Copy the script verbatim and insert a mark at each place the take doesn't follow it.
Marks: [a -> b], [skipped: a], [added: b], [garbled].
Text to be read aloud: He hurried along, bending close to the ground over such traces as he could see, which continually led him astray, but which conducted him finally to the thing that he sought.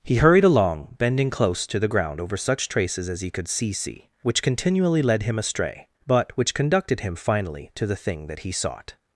He hurried along, bending close to the ground over such traces as he could see, [added: see] which continually led him astray, but which conducted him finally to the thing that he sought.